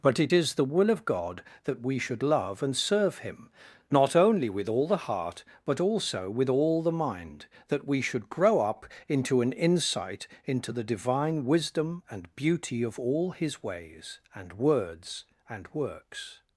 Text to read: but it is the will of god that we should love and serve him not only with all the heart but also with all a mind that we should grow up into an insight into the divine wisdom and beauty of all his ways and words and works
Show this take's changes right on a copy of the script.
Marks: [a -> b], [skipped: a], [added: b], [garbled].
but it is the will of god that we should love and serve him not only with all the heart but also with all [a -> the] mind that we should grow up into an insight into the divine wisdom and beauty of all his ways and words and works